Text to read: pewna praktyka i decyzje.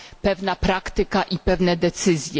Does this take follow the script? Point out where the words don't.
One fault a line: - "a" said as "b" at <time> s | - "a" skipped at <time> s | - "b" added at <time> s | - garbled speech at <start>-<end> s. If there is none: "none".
- "pewne" added at 1.4 s